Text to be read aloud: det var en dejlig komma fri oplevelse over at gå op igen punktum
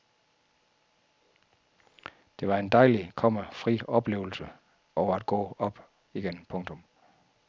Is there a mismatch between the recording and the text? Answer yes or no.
no